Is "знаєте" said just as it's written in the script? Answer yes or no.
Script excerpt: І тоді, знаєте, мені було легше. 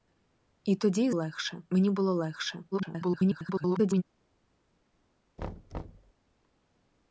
no